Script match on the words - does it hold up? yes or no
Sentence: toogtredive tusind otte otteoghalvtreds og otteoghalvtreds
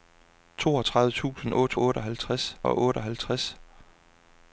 yes